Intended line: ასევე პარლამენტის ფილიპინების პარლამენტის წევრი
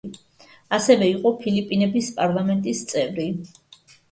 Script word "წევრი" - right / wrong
right